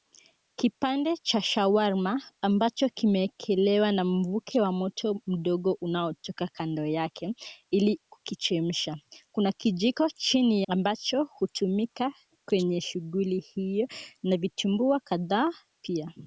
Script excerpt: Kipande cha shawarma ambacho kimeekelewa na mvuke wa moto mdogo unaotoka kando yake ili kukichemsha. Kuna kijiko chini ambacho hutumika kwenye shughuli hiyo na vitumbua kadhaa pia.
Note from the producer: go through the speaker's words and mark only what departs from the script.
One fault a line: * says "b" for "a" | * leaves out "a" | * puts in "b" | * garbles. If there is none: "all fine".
all fine